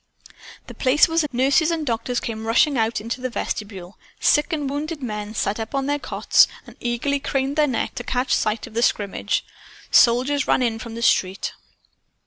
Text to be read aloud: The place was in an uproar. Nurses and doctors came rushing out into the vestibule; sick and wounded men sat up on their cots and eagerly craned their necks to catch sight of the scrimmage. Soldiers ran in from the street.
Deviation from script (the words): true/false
true